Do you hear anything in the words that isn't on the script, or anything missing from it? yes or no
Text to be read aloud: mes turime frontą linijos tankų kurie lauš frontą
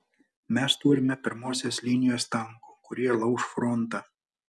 yes